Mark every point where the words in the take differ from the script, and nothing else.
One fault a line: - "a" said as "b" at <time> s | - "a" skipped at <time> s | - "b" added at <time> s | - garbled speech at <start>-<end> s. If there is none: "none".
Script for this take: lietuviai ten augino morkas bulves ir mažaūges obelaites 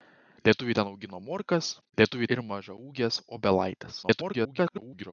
- "bulves" said as "lietuviai" at 2.0 s
- garbled speech at 4.0-5.1 s